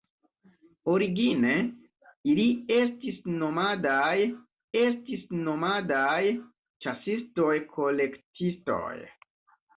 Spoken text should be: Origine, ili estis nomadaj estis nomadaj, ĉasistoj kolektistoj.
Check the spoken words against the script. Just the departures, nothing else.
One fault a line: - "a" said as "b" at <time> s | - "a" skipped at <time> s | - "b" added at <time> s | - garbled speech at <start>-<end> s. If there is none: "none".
none